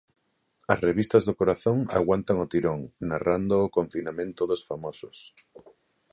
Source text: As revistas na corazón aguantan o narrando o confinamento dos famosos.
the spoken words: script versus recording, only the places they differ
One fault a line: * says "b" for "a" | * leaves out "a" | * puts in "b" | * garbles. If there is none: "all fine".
* says "do" for "na"
* puts in "tirón"